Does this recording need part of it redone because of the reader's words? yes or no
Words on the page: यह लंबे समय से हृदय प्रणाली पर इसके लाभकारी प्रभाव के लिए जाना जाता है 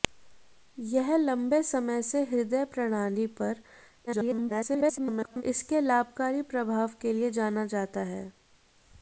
yes